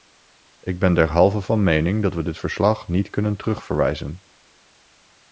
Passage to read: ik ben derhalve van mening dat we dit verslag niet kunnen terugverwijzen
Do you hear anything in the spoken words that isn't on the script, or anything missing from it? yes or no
no